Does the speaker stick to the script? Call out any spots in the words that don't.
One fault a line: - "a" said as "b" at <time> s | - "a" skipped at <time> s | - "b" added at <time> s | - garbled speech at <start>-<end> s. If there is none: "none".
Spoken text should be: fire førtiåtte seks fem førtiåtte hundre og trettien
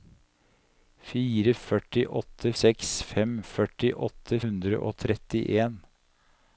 none